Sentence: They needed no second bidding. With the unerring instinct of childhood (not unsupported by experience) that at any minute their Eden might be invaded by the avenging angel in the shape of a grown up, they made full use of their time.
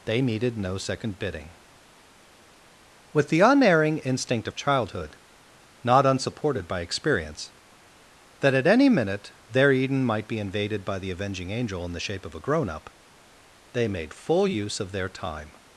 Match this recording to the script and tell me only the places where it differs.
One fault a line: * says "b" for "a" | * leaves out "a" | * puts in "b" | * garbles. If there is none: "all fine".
all fine